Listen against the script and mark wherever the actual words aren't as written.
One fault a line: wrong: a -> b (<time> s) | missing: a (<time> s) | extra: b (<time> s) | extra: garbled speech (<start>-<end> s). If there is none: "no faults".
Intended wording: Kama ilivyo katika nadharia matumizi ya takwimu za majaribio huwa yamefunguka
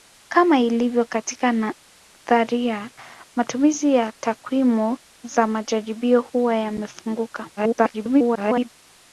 extra: garbled speech (7.6-8.7 s)